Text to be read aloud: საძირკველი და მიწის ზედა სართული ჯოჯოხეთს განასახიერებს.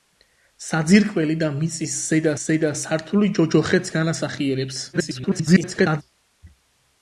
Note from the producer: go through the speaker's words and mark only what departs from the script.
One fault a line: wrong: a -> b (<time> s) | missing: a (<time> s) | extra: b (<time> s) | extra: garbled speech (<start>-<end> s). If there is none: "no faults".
extra: ზედა (2.4 s)
extra: garbled speech (4.9-6.0 s)